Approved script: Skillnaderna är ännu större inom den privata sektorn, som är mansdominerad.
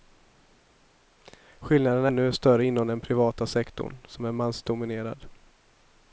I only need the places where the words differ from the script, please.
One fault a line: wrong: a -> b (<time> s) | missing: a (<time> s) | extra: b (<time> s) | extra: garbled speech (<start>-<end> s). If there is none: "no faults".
missing: är (2.1 s)